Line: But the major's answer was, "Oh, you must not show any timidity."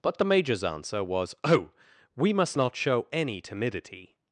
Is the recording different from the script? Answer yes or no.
yes